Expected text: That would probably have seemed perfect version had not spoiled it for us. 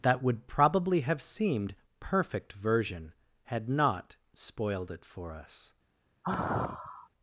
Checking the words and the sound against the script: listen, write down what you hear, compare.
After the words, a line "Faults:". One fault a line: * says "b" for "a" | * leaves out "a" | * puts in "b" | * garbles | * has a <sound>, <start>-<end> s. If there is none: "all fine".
That would probably have seemed perfect version had not spoiled it for us.
Faults:
* has a sigh, 6.2-7.1 s